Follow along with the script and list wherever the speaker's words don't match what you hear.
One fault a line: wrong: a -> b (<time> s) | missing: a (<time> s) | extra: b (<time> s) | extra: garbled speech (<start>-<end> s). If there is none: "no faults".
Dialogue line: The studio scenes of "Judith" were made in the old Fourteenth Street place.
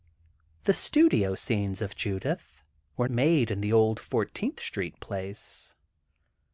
no faults